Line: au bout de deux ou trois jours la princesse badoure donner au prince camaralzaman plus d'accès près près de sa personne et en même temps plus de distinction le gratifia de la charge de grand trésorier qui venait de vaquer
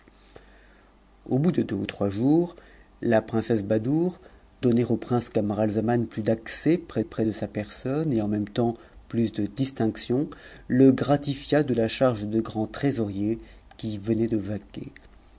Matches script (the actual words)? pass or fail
pass